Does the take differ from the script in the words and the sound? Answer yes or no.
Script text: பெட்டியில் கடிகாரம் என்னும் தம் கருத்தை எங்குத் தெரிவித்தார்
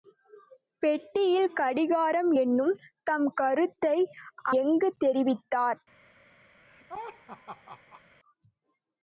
yes